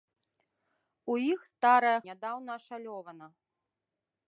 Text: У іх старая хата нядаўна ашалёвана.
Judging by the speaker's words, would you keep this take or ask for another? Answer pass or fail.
fail